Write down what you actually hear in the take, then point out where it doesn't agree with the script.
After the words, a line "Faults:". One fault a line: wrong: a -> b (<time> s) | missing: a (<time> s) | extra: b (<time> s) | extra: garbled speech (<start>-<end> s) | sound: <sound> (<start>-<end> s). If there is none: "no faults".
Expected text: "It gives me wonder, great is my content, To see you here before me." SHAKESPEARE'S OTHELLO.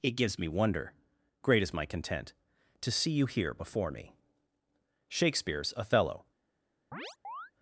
"It gives me wonder, great is my content, To see you here before me." SHAKESPEARE'S OTHELLO.
Faults:
sound: chirp (6.9-7.5 s)